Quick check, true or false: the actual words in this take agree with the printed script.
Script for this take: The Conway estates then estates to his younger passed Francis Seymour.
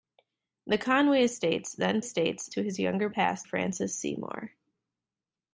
true